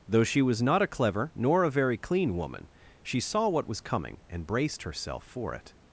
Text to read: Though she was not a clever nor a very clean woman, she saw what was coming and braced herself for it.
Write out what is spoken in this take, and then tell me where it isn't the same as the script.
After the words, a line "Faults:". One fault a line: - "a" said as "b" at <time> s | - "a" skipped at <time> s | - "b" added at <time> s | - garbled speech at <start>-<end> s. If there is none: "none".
Though she was not a clever nor a very clean woman, she saw what was coming and braced herself for it.
Faults:
none